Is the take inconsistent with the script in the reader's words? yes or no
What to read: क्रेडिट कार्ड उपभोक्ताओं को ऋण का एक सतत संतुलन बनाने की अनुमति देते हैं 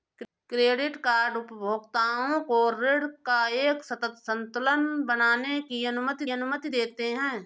yes